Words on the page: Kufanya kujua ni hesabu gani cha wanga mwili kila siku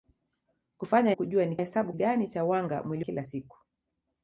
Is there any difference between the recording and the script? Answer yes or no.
no